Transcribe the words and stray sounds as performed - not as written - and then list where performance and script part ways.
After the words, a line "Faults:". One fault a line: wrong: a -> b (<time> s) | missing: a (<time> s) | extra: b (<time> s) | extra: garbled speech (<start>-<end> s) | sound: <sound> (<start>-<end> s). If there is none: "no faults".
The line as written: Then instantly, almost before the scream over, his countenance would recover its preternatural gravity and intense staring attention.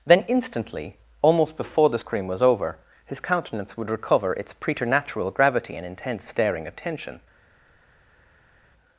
Then instantly, almost before the scream was over, his countenance would recover its preternatural gravity and intense staring attention.
Faults:
extra: was (2.3 s)